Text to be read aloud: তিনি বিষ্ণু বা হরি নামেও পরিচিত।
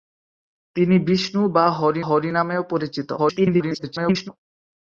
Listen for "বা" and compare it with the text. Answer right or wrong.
right